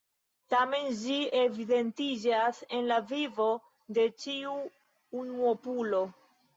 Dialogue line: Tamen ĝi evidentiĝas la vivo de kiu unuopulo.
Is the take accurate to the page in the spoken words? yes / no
no